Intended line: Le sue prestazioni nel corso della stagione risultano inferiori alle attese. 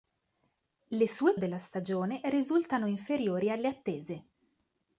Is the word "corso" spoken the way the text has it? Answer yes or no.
no